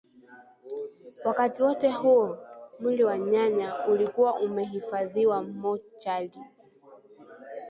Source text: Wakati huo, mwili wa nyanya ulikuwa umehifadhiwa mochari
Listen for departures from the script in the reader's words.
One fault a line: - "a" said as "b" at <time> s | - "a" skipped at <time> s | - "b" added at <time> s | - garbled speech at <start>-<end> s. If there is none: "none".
- "wote" added at 1.6 s